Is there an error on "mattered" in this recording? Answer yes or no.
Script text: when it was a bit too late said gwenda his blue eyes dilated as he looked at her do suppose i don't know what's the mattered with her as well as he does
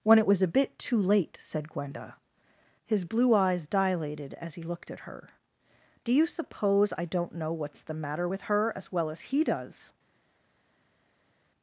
yes